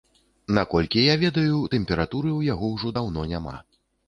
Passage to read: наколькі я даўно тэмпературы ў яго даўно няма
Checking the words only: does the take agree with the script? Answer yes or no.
no